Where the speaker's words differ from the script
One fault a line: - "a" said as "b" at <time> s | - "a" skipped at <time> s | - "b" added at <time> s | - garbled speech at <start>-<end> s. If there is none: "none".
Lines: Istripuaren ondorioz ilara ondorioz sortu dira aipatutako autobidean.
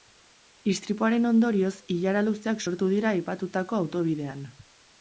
- "ondorioz" said as "luzeak" at 2.3 s